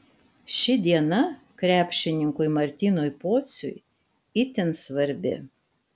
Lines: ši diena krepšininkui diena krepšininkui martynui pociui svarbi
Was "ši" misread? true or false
false